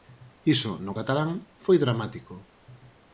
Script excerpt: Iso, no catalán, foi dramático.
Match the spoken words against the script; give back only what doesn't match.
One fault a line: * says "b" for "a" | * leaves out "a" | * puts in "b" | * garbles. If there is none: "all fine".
all fine